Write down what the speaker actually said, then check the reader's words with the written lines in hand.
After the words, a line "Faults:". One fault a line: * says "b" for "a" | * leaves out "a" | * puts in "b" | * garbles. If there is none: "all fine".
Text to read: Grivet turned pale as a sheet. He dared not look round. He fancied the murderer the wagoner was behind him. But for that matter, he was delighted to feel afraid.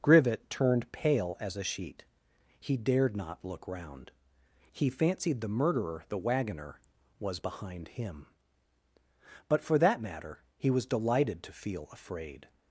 Grivet turned pale as a sheet. He dared not look round. He fancied the murderer the wagoner was behind him. But for that matter, he was delighted to feel afraid.
Faults:
all fine